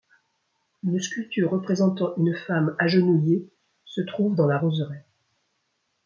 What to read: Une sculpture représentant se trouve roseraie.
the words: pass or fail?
fail